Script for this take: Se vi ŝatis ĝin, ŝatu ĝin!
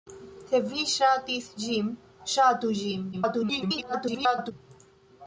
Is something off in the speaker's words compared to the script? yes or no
yes